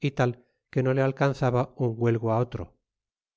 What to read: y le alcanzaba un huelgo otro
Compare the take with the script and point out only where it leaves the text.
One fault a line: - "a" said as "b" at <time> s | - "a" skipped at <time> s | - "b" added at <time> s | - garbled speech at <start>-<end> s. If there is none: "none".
- "tal que no" added at 0.1 s